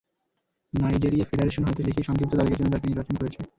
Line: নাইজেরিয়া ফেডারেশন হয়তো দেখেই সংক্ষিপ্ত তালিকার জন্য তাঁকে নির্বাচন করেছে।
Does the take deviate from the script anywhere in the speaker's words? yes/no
no